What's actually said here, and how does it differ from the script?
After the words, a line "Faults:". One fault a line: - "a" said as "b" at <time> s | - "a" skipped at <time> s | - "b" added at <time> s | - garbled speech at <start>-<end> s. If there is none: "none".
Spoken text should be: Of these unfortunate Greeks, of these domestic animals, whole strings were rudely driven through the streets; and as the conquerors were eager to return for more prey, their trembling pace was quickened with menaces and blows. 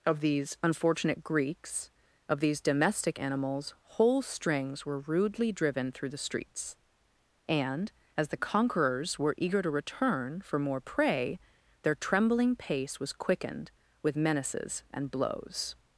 Of these unfortunate Greeks, of these domestic animals, whole strings were rudely driven through the streets; and as the conquerors were eager to return for more prey, their trembling pace was quickened with menaces and blows.
Faults:
none